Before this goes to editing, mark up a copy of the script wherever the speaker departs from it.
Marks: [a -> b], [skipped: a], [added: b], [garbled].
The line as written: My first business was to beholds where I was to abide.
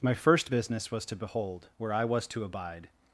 My first business was to [beholds -> behold] where I was to abide.